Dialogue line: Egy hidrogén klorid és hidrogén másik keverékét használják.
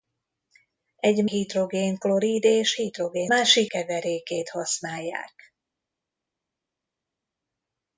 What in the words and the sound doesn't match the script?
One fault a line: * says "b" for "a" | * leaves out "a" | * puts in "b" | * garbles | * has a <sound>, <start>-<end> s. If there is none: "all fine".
all fine